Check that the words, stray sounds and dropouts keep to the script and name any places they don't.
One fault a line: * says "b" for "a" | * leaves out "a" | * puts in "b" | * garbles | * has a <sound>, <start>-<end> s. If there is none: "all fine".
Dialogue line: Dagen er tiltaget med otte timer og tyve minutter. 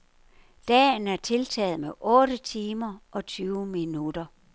all fine